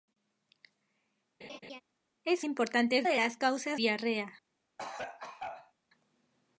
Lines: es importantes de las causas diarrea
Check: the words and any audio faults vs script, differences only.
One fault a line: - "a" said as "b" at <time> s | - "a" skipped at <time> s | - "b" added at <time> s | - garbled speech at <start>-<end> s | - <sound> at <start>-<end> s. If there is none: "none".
- laugh at 1.4-1.8 s
- cough at 4.8-5.7 s